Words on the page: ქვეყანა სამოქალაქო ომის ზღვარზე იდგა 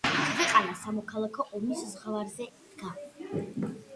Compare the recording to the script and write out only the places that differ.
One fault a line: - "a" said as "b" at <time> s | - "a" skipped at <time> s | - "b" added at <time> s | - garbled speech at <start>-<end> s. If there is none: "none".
none